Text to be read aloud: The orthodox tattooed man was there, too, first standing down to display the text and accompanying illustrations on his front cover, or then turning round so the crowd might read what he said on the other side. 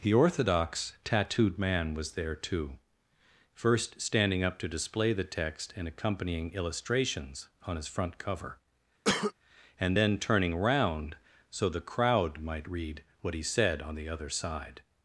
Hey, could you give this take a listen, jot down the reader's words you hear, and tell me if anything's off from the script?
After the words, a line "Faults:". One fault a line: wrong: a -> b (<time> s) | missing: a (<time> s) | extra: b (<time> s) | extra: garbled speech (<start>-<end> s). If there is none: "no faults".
The orthodox tattooed man was there, too, first standing up to display the text and accompanying illustrations on his front cover, and then turning round so the crowd might read what he said on the other side.
Faults:
wrong: down -> up (4.4 s)
wrong: or -> and (9.8 s)